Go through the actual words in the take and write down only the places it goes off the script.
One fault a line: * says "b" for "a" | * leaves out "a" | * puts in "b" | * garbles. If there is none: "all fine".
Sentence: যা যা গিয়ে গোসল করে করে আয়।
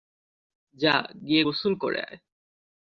* leaves out "যা"
* leaves out "করে"